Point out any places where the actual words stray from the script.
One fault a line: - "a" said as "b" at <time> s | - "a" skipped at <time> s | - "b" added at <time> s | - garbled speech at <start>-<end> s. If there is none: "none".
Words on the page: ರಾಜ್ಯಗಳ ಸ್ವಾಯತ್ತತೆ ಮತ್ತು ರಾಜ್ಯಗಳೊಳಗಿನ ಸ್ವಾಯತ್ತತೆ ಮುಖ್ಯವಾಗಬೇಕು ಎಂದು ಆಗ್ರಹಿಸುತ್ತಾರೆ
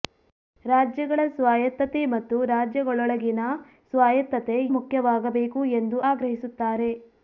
none